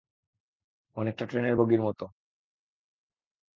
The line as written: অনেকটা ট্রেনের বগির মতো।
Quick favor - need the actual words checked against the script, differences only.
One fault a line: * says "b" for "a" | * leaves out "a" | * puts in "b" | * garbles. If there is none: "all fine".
all fine